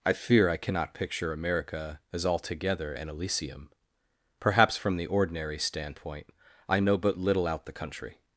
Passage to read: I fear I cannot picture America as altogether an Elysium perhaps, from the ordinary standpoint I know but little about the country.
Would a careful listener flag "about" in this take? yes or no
yes